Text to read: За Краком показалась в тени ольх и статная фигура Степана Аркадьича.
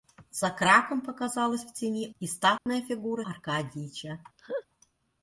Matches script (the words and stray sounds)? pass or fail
fail